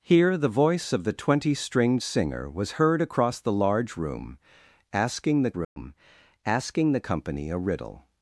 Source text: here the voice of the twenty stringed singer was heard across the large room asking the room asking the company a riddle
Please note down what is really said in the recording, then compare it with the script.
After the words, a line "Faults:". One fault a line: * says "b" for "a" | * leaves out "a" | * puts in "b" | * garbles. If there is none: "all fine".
here the voice of the twenty stringed singer was heard across the large room asking the room asking the company a riddle
Faults:
all fine